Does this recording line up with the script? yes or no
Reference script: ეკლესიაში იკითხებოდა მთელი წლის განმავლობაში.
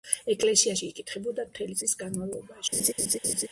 yes